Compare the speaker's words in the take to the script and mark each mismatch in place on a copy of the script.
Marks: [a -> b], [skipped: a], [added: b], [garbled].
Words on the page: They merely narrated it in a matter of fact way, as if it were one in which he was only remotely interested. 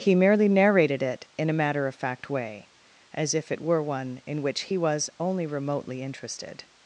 [They -> He] merely narrated it in a matter of fact way, as if it were one in which he was only remotely interested.